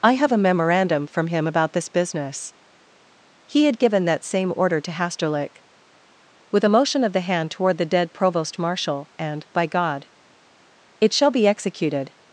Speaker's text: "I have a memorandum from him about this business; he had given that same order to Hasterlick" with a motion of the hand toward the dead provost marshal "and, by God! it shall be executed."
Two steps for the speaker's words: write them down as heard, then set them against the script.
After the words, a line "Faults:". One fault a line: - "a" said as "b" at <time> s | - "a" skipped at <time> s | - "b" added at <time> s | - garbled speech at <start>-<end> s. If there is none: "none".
"I have a memorandum from him about this business; he had given that same order to Hasterlick" with a motion of the hand toward the dead provost marshal "and, by God! it shall be executed."
Faults:
none